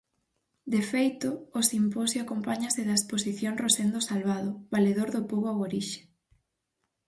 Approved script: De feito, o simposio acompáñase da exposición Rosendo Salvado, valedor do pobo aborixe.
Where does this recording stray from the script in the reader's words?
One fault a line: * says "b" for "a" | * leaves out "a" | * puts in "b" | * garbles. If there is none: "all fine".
all fine